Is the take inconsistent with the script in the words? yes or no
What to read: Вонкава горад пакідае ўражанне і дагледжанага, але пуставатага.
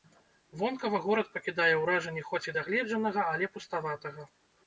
yes